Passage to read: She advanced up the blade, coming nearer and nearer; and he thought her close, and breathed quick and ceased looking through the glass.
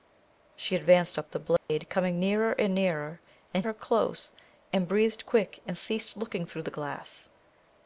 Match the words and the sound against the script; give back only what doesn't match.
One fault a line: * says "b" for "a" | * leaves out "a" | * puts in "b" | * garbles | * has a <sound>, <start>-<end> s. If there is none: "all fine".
* has a dropout, 1.6-1.7 s
* leaves out "he thought"